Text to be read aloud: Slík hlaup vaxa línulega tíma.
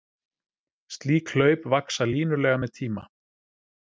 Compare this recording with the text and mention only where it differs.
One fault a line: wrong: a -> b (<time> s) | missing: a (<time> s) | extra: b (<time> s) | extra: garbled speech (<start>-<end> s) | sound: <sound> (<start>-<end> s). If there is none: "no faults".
extra: með (2.6 s)